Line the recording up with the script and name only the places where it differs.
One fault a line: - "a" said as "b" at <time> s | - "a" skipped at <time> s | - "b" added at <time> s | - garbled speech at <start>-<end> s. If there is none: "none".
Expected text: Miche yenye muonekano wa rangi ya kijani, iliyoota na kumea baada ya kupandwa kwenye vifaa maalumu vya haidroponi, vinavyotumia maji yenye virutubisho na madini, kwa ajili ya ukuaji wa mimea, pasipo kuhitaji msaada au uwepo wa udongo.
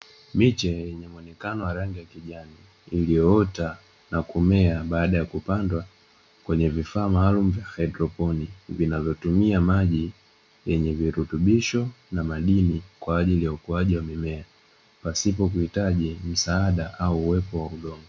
none